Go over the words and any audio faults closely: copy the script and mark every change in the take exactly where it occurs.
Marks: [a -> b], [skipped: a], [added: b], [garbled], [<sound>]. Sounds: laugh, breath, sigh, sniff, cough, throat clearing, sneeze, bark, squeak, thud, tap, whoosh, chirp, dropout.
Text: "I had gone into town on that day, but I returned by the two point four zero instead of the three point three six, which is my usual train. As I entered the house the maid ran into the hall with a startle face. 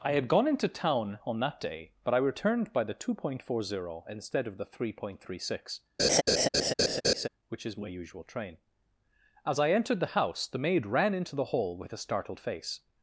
"I had gone into town on that day, but I returned by the two point four zero instead of the three point three six, [laugh] which is my usual train. As I entered the house the maid ran into the hall with a [startle -> startled] face.